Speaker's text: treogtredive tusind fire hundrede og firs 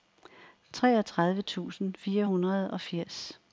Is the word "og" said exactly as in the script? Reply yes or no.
yes